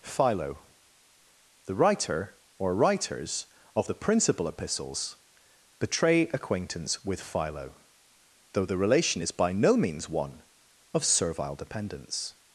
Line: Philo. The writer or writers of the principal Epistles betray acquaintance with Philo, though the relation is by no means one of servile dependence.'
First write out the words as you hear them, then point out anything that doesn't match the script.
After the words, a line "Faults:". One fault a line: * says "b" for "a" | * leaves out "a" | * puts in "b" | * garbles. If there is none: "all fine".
Philo. The writer or writers of the principal Epistles betray acquaintance with Philo, though the relation is by no means one of servile dependence.'
Faults:
all fine